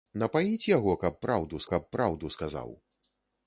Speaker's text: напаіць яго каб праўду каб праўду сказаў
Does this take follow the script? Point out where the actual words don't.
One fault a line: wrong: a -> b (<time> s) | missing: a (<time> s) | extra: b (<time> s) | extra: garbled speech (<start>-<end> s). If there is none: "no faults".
no faults